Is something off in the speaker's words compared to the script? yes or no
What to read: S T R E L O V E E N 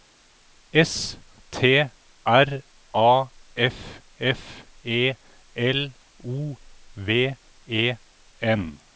yes